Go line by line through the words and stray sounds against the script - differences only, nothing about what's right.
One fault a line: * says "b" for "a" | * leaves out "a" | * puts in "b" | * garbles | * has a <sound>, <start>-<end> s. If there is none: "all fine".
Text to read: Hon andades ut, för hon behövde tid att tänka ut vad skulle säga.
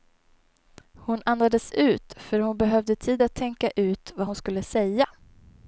* puts in "hon"